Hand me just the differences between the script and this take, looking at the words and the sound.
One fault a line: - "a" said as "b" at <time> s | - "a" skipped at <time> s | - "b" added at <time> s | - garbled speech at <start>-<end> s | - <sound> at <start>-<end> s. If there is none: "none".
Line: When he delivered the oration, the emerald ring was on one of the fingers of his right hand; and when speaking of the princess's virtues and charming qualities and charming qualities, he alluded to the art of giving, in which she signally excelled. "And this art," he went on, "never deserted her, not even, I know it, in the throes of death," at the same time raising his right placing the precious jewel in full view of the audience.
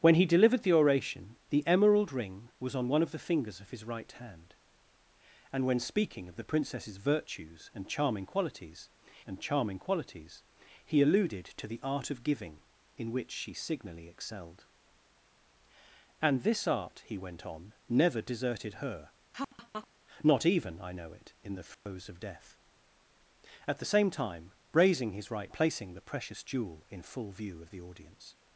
- laugh at 19.3-19.9 s
- dropout at 21.7-21.9 s